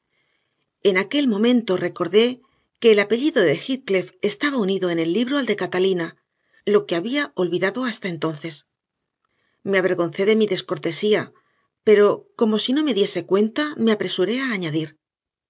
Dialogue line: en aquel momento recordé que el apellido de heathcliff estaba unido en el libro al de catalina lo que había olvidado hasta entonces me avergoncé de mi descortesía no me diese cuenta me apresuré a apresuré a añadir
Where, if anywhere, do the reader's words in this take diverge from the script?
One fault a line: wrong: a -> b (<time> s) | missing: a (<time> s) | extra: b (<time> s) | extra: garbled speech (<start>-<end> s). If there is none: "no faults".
extra: pero como si (11.8 s)
missing: apresuré a (14.5 s)